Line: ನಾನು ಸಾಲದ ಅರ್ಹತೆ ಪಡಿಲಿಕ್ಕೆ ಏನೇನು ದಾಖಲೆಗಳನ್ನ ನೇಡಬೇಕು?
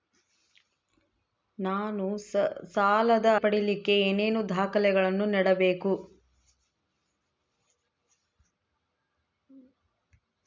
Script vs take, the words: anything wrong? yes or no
yes